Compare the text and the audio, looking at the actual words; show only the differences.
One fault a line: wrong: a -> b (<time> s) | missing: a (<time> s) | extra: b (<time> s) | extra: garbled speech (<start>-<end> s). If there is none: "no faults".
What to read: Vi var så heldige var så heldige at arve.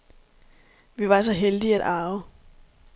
missing: var så heldige (1.8 s)